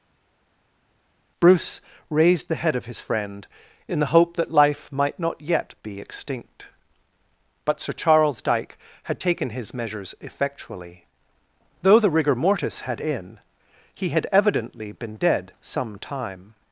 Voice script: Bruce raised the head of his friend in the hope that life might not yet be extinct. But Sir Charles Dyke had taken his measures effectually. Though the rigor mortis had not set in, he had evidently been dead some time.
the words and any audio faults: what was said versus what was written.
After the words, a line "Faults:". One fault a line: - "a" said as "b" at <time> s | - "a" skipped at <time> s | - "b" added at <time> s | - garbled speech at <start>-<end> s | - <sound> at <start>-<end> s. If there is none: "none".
Bruce raised the head of his friend in the hope that life might not yet be extinct. But Sir Charles Dyke had taken his measures effectually. Though the rigor mortis had in, he had evidently been dead some time.
Faults:
- "not set" skipped at 13.0 s